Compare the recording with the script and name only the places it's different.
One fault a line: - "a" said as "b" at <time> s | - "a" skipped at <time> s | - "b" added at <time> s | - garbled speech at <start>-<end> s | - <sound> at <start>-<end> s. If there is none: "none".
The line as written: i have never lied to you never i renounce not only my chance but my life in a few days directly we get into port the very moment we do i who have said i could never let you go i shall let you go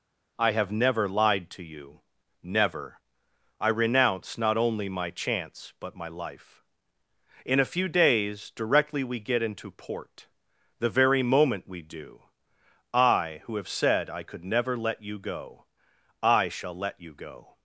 none